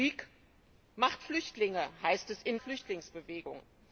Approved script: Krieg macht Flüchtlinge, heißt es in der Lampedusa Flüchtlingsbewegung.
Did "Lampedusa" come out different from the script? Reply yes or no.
yes